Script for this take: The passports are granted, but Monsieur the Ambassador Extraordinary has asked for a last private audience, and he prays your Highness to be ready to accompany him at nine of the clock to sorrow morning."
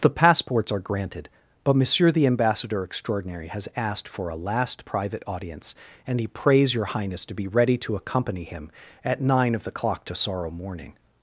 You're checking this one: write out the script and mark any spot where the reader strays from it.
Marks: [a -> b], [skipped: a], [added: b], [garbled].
The passports are granted, but Monsieur the Ambassador Extraordinary has asked for a last private audience, and he prays your Highness to be ready to accompany him at nine of the clock to sorrow morning."